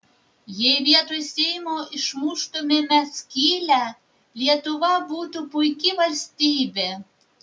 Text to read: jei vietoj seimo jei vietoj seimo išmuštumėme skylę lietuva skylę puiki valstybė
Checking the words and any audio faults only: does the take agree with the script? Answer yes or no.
no